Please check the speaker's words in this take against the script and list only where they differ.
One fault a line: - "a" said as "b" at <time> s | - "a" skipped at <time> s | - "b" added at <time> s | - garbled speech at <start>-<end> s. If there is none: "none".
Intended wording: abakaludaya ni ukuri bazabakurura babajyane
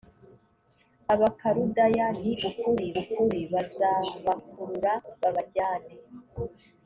- "ukuri" added at 3.0 s